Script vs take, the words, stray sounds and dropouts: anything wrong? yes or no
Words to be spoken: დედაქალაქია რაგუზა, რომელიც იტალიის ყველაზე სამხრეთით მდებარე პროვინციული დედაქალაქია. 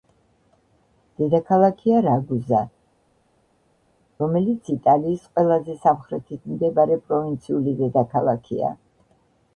no